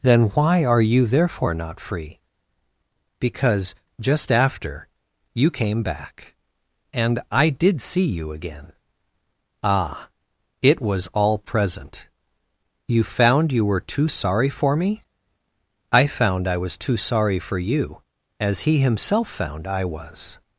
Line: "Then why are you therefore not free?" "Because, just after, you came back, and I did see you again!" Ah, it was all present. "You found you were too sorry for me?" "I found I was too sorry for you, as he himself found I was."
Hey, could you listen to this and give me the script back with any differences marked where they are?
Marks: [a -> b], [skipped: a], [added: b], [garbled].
"Then why are you therefore not free?" "Because, just after, you came back, and I did see you again!" Ah, it was all present. "You found you were too sorry for me?" "I found I was too sorry for you, as he himself found I was."